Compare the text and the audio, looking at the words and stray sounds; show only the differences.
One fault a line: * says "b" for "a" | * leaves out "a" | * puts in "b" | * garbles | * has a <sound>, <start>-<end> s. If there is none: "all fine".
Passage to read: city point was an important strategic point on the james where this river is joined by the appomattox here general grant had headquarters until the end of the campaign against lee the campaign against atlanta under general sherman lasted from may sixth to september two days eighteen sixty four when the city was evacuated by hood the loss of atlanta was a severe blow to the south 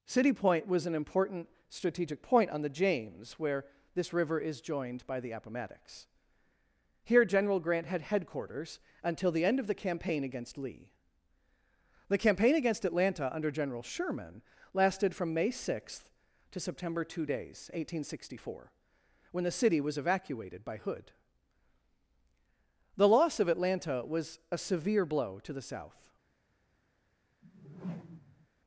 * has a whoosh, 27.4-28.5 s